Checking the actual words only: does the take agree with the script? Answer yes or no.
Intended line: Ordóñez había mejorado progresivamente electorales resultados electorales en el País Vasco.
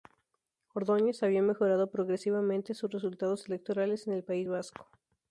no